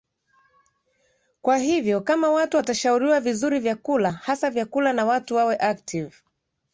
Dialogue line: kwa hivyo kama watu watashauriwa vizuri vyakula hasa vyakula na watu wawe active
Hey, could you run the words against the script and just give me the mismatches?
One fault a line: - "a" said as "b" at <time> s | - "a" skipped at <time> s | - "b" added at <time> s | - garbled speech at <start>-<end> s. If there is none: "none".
none